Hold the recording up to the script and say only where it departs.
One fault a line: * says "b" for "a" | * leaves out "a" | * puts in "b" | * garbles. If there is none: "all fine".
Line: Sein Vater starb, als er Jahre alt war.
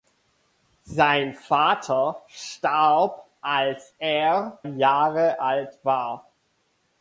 all fine